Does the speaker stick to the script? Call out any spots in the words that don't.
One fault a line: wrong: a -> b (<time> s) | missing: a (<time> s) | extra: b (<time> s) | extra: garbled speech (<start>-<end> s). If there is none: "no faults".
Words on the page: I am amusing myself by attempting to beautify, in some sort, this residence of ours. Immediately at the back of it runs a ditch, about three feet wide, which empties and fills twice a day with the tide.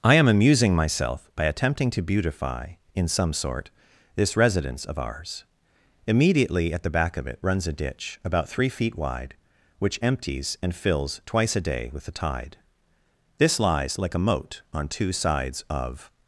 extra: This lies like a moat on two sides of (13.4 s)